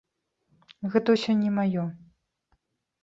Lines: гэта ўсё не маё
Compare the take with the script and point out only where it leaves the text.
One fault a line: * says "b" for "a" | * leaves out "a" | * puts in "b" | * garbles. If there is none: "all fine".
all fine